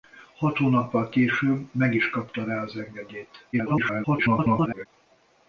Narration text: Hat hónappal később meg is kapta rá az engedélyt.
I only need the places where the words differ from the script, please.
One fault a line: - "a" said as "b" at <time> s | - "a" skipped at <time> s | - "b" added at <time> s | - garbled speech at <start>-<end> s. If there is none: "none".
- garbled speech at 3.5-4.9 s